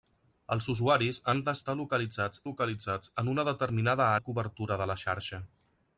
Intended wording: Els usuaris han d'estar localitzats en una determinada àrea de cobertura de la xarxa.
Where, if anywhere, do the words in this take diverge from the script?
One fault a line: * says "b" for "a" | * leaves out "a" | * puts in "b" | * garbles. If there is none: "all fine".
* puts in "localitzats"
* leaves out "àrea"